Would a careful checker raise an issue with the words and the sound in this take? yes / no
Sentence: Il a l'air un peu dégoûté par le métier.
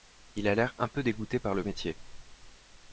no